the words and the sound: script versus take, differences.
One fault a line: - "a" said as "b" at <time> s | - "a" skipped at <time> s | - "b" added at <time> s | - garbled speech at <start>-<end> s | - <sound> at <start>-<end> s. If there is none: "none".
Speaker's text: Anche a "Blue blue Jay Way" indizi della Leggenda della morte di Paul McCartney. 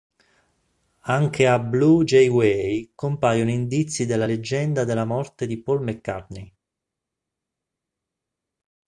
- "blue" skipped at 2.0 s
- "compaiono" added at 3.0 s